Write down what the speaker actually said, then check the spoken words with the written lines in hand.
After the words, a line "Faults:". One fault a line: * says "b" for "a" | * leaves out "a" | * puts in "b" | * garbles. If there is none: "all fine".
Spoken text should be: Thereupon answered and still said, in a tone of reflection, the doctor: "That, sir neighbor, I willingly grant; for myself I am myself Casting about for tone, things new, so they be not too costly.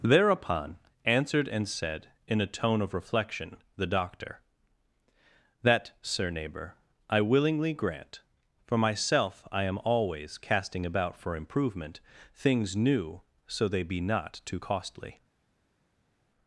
Thereupon answered and said, in a tone of reflection, the doctor: "That, sir neighbor, I willingly grant; for myself I am always Casting about for improvement, things new, so they be not too costly.
Faults:
* leaves out "still"
* says "always" for "myself"
* says "improvement" for "tone"